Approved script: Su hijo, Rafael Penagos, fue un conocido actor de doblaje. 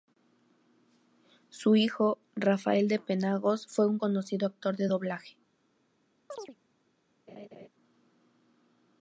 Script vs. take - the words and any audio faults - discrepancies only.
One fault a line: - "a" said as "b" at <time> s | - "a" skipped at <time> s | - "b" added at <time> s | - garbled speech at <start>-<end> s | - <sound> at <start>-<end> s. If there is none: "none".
- "de" added at 2.9 s
- chirp at 6.3-6.6 s
- laugh at 7.3-7.7 s